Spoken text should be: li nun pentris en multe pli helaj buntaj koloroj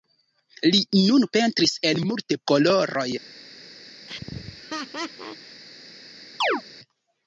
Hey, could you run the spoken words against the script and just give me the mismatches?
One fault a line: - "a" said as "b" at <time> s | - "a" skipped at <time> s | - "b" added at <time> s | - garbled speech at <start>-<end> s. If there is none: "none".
- "pli helaj buntaj" skipped at 2.4 s